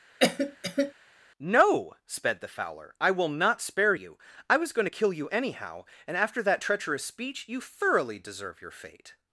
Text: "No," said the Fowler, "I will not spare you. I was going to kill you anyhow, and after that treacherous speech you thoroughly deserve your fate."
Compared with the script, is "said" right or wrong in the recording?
wrong